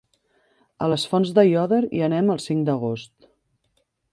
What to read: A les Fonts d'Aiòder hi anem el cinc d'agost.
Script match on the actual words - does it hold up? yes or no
yes